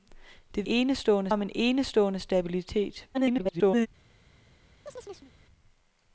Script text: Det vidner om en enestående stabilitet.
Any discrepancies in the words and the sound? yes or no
yes